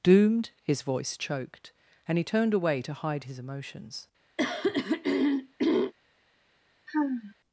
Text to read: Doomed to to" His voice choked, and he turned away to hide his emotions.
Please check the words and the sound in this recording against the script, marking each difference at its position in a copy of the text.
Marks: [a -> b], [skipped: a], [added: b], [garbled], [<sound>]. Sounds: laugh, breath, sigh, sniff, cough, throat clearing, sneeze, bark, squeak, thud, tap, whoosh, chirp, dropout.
Doomed [skipped: to to"] His voice choked, and he turned away to hide his emotions. [throat clearing] [sigh]